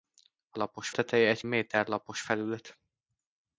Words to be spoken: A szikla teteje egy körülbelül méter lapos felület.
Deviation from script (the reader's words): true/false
true